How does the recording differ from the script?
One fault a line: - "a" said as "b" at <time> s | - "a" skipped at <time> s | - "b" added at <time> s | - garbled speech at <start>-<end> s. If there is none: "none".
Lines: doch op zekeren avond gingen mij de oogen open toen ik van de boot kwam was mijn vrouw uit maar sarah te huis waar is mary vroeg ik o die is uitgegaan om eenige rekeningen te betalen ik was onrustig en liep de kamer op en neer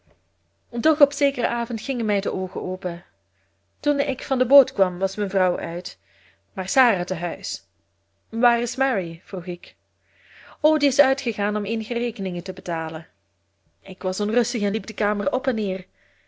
none